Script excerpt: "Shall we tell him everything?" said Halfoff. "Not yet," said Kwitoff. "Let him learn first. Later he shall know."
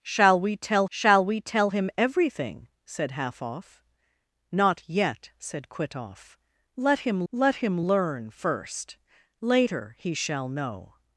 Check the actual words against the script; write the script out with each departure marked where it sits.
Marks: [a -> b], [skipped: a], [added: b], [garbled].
"Shall we tell [added: shall we tell] him everything?" said Halfoff. "Not yet," said Kwitoff. "Let him [added: let him] learn first. Later he shall know."